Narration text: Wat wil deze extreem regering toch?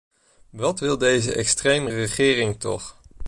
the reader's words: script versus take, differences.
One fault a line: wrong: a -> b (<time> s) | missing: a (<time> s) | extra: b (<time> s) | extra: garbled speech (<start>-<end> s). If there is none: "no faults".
no faults